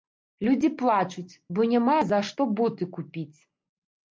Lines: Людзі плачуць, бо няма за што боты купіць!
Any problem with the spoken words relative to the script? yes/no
no